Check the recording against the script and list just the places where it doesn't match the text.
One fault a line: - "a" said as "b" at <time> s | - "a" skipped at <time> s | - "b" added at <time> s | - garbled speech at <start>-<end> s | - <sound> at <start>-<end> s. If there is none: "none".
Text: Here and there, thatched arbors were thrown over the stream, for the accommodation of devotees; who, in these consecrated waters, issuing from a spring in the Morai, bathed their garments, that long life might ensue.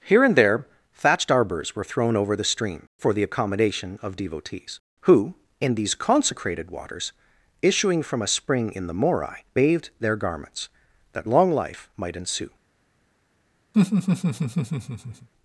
- laugh at 13.7-15.3 s